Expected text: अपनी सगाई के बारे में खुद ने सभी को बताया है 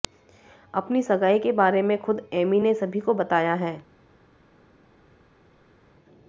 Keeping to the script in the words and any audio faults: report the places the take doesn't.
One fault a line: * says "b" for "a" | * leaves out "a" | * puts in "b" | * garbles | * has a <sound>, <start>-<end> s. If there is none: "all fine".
* puts in "एमी"